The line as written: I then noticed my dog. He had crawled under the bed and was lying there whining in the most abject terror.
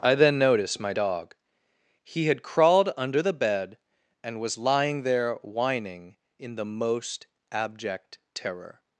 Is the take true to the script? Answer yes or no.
yes